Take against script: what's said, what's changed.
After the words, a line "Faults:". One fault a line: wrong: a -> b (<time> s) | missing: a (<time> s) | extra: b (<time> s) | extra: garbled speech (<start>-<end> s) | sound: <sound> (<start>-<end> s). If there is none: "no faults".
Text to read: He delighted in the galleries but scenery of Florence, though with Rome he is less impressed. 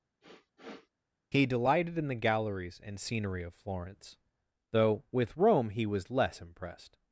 He delighted in the galleries and scenery of Florence, though with Rome he was less impressed.
Faults:
sound: sniff (0.2-0.9 s)
wrong: but -> and (2.8 s)
wrong: is -> was (5.9 s)